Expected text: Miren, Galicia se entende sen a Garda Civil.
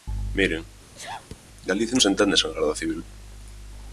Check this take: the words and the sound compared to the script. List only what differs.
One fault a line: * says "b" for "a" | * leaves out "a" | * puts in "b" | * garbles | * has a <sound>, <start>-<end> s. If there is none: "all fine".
* has a sneeze, 0.9-1.4 s